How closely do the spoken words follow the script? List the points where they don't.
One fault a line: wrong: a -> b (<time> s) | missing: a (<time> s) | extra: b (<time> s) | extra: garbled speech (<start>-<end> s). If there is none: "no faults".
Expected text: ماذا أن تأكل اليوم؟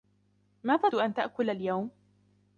no faults